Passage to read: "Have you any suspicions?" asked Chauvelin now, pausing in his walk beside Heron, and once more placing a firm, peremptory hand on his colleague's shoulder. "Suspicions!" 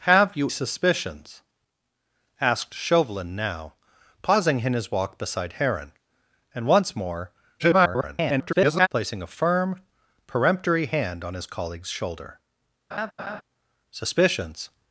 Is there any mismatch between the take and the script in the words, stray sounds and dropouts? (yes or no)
yes